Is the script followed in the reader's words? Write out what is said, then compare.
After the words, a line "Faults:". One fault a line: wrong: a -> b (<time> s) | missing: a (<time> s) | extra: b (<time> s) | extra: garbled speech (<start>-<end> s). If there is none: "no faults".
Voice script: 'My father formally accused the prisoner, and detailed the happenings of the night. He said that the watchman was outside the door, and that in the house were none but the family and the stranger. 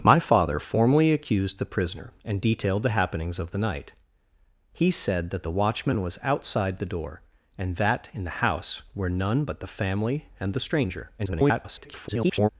'My father formally accused the prisoner, and detailed the happenings of the night. He said that the watchman was outside the door, and that in the house were none but the family and the stranger. [garbled]
Faults:
extra: garbled speech (11.2-12.5 s)